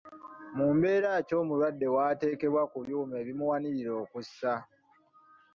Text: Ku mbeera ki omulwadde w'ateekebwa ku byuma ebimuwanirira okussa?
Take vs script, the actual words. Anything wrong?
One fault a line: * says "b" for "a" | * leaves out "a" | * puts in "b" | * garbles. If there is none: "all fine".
* says "Mu" for "Ku"